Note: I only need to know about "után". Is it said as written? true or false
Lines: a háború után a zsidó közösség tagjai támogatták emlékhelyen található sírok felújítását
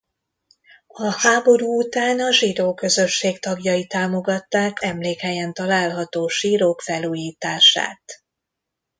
true